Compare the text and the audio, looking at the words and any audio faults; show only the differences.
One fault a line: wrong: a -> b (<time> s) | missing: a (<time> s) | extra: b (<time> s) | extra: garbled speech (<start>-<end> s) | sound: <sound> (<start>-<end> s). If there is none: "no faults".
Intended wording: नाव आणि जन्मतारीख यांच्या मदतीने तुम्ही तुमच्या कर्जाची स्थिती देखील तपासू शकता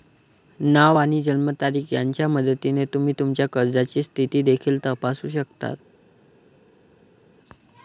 no faults